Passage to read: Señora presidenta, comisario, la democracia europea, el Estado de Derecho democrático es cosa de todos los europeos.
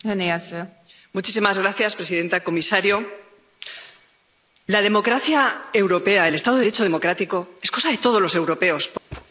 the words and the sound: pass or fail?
fail